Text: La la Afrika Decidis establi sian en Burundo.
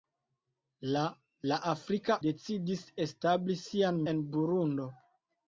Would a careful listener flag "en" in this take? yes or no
no